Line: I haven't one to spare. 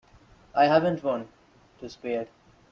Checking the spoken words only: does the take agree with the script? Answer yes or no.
yes